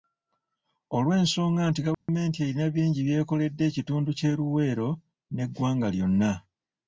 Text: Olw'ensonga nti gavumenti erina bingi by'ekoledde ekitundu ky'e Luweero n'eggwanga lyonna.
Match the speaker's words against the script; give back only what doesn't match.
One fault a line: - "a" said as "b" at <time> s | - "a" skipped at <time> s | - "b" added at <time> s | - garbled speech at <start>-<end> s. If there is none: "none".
none